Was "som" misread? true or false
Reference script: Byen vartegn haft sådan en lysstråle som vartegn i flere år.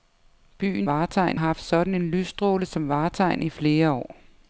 false